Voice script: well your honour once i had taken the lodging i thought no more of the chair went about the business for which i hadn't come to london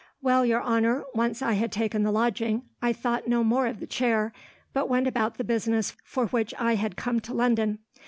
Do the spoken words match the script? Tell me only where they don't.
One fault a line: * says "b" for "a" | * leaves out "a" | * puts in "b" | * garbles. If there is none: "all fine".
* puts in "but"
* says "had" for "hadn't"